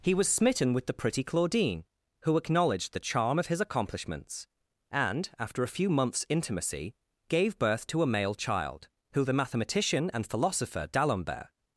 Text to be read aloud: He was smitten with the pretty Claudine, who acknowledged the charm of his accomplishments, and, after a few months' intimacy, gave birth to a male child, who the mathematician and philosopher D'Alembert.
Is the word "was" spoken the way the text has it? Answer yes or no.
yes